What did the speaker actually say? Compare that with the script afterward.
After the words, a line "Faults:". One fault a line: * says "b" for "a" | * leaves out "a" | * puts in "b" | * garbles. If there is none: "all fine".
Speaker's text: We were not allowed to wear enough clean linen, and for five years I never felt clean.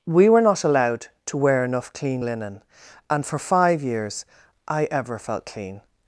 We were not allowed to wear enough clean linen, and for five years I ever felt clean.
Faults:
* says "ever" for "never"